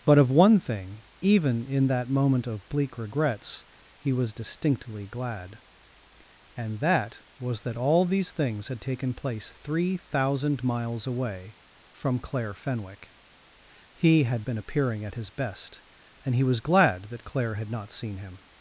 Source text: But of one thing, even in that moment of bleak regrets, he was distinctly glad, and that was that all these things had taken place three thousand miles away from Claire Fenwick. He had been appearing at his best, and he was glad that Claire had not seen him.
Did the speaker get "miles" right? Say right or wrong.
right